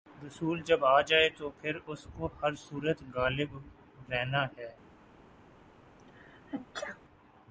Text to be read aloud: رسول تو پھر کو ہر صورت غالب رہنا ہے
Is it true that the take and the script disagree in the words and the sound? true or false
true